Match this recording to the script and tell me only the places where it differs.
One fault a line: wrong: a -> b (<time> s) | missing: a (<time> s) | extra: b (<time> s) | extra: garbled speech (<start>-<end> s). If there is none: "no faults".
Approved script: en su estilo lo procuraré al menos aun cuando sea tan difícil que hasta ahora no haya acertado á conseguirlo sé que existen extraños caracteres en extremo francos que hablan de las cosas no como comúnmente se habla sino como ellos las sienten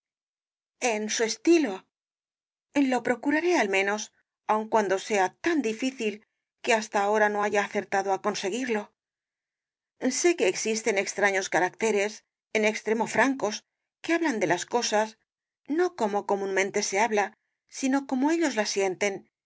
no faults